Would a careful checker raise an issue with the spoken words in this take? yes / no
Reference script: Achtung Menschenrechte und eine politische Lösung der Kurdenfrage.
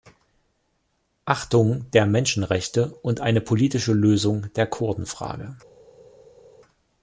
yes